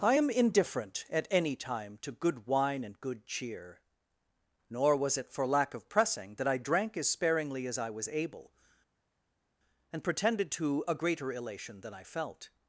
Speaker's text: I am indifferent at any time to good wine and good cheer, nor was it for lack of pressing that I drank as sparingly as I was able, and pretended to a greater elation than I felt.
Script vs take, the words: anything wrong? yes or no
no